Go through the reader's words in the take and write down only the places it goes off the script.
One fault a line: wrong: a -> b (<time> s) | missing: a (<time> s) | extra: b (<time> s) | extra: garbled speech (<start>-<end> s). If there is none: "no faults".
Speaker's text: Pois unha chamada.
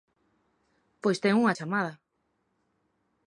extra: ten (1.2 s)